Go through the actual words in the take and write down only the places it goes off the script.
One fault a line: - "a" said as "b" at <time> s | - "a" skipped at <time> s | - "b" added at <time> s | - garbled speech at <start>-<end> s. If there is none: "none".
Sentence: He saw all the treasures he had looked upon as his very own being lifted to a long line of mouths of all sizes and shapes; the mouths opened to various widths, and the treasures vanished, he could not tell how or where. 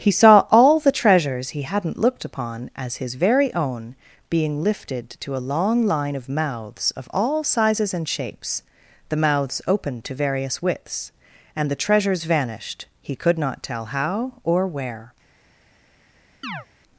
- "had" said as "hadn't" at 1.6 s